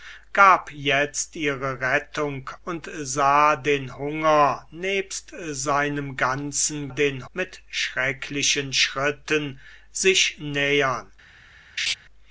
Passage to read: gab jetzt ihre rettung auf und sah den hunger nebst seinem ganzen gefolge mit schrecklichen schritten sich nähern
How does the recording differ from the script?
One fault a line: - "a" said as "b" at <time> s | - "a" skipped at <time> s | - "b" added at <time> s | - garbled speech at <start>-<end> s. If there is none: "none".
- "auf" skipped at 2.5 s
- "gefolge" said as "den" at 6.9 s